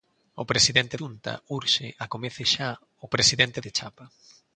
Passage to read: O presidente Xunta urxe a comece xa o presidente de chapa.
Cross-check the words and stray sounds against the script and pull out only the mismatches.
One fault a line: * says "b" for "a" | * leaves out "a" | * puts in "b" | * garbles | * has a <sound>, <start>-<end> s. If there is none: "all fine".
all fine